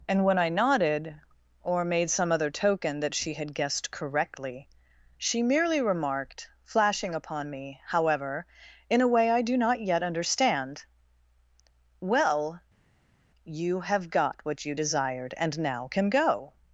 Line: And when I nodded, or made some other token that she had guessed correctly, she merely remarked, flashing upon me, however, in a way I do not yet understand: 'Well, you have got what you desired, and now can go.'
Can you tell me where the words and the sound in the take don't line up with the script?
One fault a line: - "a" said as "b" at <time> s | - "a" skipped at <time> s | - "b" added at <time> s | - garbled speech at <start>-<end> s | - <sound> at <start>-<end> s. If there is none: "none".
none